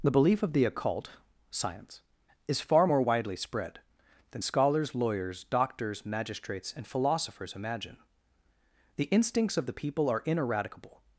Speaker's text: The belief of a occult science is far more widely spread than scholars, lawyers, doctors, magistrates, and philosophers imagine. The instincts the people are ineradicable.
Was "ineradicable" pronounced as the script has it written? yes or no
yes